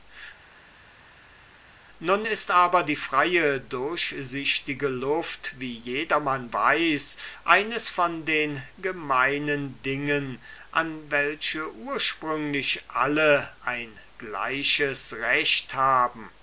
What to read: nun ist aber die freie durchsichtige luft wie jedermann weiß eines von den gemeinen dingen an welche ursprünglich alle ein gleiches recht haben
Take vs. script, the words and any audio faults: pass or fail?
pass